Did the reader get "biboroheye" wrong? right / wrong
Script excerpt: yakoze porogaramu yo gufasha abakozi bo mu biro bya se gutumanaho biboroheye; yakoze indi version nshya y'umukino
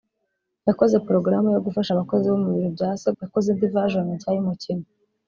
wrong